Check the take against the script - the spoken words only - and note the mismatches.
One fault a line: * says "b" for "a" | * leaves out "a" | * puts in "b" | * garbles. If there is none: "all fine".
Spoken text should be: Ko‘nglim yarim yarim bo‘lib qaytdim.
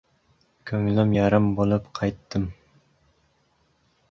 * leaves out "yarim"